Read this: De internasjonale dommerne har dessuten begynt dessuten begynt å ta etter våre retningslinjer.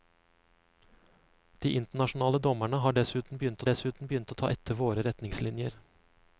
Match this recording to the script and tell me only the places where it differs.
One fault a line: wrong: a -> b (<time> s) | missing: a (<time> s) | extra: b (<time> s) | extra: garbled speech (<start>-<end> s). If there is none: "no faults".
no faults